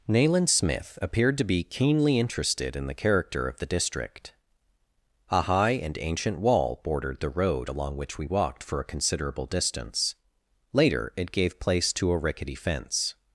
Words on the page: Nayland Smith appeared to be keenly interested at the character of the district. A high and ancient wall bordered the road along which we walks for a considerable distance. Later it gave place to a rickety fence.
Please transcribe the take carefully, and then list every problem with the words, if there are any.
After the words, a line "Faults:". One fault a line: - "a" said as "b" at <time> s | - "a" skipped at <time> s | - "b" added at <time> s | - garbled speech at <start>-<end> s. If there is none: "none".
Nayland Smith appeared to be keenly interested in the character of the district. A high and ancient wall bordered the road along which we walked for a considerable distance. Later it gave place to a rickety fence.
Faults:
- "at" said as "in" at 2.8 s
- "walks" said as "walked" at 8.2 s